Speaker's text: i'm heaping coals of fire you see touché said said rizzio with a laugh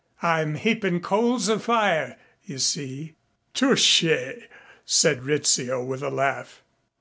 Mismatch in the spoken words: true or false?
true